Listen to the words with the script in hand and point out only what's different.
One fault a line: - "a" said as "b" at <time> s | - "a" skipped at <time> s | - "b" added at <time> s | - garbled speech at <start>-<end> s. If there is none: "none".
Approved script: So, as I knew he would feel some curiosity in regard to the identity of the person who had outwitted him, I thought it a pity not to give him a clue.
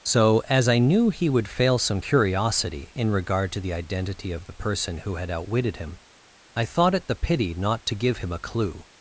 - "feel" said as "fail" at 1.5 s
- "a" said as "the" at 7.1 s